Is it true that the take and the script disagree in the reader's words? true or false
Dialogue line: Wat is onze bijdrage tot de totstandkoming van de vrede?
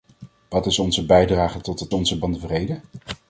true